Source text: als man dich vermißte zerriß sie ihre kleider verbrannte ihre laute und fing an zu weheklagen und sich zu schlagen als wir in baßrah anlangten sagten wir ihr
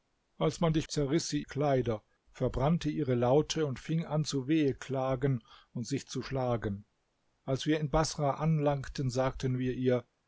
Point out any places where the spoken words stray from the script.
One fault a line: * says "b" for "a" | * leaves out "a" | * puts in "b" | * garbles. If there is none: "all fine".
* leaves out "vermißte"
* leaves out "ihre"